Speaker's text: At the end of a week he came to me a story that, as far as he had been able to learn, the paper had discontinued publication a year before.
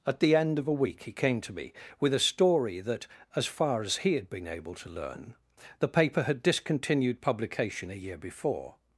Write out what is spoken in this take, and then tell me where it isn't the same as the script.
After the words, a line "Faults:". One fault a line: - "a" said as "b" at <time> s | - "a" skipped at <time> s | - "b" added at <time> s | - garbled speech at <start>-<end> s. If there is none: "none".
At the end of a week he came to me with a story that, as far as he had been able to learn, the paper had discontinued publication a year before.
Faults:
- "with" added at 2.0 s